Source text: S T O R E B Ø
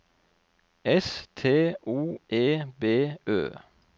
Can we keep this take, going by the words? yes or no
no